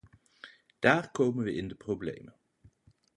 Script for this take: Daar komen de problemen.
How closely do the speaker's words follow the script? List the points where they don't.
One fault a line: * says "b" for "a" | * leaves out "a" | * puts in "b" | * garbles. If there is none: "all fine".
* puts in "we in"